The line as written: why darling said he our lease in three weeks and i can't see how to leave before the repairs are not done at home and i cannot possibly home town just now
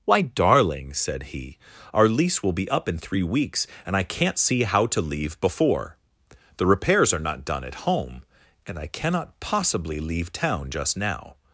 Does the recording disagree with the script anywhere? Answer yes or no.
yes